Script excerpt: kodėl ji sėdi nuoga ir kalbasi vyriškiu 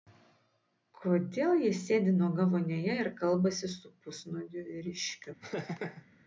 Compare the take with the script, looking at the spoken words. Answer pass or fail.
fail